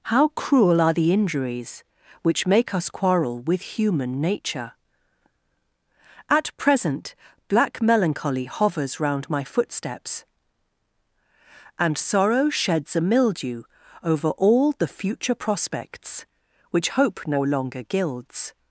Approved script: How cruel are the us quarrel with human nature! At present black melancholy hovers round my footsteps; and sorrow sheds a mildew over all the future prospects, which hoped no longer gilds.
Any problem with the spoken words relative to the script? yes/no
yes